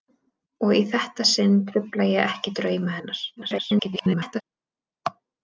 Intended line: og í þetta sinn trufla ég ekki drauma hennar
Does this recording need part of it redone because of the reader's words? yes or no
yes